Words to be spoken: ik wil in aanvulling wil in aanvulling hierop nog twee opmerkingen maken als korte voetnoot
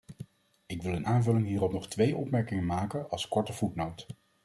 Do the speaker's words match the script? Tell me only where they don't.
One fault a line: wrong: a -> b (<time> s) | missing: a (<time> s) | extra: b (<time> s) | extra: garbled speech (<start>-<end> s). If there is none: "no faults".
missing: wil in aanvulling (1.5 s)